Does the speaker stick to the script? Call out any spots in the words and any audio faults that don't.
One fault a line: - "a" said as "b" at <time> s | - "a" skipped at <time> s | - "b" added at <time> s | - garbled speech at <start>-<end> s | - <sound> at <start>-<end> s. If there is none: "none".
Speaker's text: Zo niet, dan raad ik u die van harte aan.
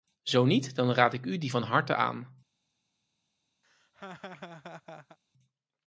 - laugh at 3.6-5.2 s